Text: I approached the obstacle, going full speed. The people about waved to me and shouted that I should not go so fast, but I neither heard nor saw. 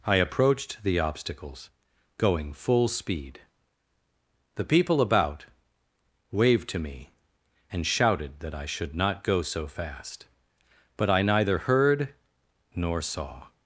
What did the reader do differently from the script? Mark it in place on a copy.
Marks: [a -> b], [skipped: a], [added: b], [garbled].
I approached the [obstacle, -> obstacles] going full speed. The people about waved to me and shouted that I should not go so fast, but I neither heard nor saw.